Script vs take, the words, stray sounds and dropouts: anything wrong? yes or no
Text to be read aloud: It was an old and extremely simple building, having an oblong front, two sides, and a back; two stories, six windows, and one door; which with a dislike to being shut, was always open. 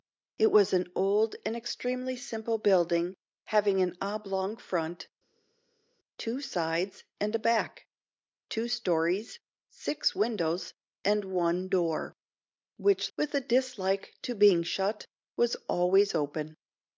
no